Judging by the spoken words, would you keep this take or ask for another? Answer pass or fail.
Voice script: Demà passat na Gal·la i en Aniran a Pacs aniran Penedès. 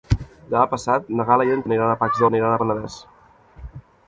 pass